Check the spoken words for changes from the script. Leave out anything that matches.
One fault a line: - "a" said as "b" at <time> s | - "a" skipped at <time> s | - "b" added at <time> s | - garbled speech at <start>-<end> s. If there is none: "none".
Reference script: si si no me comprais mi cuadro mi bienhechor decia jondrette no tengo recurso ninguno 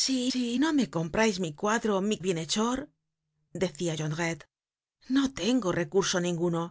none